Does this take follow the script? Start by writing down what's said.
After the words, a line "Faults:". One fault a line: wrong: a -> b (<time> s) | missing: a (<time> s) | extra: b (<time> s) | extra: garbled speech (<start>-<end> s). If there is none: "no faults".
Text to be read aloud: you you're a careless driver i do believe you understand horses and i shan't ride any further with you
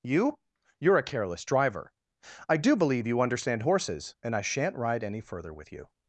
you you're a careless driver i do believe you understand horses and i shan't ride any further with you
Faults:
no faults